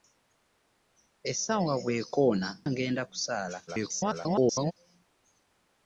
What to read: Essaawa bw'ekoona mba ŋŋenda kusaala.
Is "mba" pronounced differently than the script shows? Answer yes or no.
yes